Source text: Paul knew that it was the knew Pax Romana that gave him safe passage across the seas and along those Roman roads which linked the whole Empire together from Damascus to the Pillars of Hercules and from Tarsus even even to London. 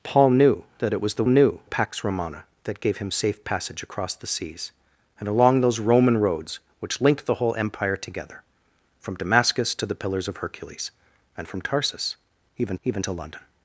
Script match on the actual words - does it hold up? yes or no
yes